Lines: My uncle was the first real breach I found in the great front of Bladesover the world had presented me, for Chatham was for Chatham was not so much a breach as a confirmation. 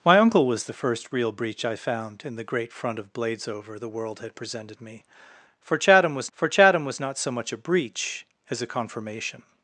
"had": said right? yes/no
yes